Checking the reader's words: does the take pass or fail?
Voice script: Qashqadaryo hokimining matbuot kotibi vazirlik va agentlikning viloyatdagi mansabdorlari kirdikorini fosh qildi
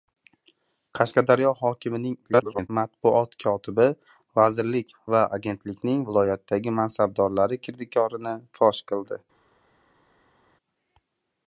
fail